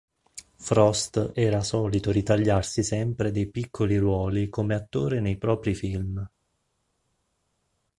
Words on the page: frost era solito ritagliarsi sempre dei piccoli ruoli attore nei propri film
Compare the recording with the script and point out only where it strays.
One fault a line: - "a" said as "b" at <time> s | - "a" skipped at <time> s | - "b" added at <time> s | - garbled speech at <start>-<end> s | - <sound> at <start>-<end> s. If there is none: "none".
- "come" added at 4.5 s